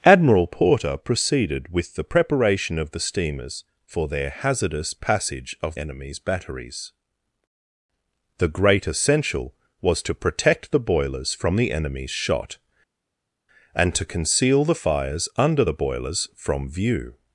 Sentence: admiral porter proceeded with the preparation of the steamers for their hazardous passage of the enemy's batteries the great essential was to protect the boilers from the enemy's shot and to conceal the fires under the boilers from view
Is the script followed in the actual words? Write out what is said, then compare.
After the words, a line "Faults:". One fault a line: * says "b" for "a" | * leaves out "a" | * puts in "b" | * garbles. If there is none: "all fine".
admiral porter proceeded with the preparation of the steamers for their hazardous passage of enemy's batteries the great essential was to protect the boilers from the enemy's shot and to conceal the fires under the boilers from view
Faults:
* leaves out "the"